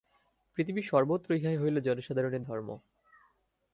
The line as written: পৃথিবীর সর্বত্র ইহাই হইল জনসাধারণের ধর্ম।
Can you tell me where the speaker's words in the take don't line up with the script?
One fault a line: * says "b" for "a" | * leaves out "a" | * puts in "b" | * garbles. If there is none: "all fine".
all fine